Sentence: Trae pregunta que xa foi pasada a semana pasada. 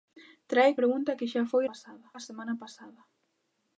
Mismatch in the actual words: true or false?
false